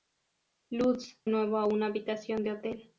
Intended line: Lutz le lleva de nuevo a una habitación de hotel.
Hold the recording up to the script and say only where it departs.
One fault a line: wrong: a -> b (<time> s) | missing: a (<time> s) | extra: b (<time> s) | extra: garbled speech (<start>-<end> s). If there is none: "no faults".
missing: le lleva de (1.2 s)